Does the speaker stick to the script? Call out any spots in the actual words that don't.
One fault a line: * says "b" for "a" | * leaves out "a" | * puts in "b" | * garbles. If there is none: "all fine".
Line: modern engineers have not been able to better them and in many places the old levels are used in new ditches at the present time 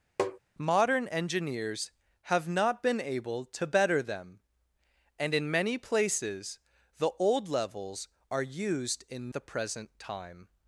* leaves out "new ditches at"